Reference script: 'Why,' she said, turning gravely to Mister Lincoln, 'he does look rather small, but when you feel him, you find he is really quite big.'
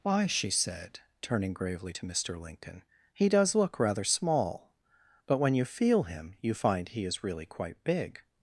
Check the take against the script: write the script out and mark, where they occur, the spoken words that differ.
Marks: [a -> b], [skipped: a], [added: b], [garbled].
'Why,' she said, turning gravely to Mister Lincoln, 'he does look rather small, but when you feel him, you find he is really quite big.'